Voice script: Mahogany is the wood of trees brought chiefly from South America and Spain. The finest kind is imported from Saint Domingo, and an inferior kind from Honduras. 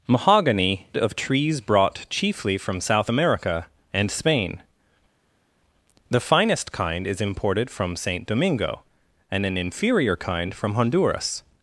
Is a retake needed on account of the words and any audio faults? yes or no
yes